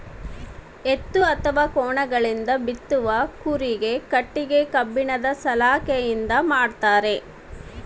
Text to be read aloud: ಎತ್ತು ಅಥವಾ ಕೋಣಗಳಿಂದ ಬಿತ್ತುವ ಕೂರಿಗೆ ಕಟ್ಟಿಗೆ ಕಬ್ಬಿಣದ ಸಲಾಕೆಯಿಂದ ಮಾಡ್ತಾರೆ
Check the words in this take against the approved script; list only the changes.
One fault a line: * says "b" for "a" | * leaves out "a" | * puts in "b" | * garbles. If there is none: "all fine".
all fine